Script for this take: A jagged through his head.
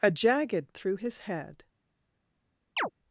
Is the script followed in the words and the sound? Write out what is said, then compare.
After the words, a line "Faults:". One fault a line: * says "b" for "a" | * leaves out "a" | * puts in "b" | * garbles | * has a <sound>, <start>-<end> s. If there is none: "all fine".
A jagged through his head.
Faults:
* has a chirp, 2.8-2.9 s